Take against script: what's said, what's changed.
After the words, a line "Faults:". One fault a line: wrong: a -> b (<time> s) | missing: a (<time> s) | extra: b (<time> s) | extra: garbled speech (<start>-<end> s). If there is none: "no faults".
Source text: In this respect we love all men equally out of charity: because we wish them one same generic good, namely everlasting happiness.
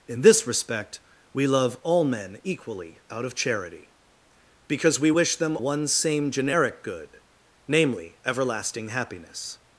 In this respect we love all men equally out of charity: because we wish them one same generic good, namely everlasting happiness.
Faults:
no faults